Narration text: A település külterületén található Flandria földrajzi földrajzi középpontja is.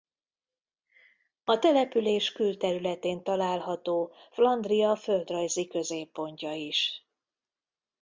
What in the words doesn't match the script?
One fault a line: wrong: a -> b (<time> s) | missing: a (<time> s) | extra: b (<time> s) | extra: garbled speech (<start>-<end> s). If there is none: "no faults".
missing: földrajzi (5.7 s)